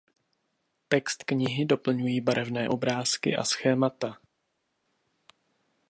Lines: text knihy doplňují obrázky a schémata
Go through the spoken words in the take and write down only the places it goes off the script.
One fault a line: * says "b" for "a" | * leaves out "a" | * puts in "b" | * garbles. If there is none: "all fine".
* puts in "barevné"